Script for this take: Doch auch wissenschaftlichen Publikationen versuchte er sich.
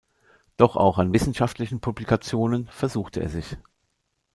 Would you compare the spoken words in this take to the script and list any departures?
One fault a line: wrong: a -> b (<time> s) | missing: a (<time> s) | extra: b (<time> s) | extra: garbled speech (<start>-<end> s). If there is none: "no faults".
extra: an (1.0 s)